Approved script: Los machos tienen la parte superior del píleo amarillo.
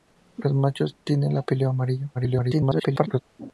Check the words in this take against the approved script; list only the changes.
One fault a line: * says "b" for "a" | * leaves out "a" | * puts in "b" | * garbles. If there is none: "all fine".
* leaves out "parte superior del"
* garbles